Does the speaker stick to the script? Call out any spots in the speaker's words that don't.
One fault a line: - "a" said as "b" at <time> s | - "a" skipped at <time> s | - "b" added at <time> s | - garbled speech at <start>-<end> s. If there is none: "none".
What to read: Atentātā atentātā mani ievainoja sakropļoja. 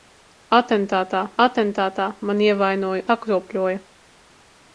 none